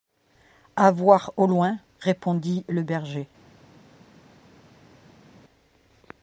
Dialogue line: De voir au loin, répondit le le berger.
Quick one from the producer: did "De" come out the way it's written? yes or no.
no